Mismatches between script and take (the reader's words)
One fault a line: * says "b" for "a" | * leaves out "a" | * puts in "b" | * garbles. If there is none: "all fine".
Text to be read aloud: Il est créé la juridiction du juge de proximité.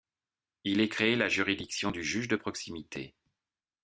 all fine